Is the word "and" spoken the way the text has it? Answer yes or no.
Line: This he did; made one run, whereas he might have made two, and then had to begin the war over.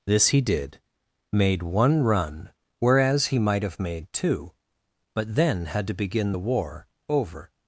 no